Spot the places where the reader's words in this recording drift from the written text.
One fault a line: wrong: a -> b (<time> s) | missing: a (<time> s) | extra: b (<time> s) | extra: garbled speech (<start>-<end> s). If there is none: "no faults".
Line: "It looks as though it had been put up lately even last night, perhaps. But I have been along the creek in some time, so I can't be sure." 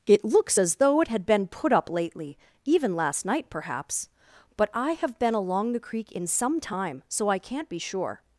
no faults